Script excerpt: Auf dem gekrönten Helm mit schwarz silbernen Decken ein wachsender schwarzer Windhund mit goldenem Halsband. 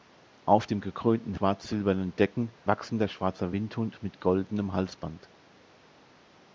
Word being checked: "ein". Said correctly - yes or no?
no